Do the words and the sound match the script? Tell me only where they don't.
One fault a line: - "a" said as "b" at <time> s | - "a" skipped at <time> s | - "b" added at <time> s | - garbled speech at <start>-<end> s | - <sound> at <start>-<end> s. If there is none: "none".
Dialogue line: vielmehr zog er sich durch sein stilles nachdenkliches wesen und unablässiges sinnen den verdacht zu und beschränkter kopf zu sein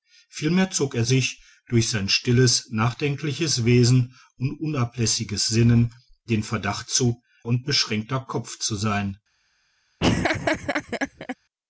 - laugh at 10.0-11.4 s